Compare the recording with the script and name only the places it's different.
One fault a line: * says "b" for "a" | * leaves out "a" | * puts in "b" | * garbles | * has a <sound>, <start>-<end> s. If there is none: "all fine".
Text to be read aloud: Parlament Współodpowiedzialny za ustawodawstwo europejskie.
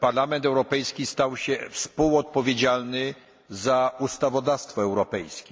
* puts in "Europejski stał się"